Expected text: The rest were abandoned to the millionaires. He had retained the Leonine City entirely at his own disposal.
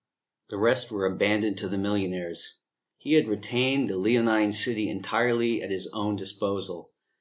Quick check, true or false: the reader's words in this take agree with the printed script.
true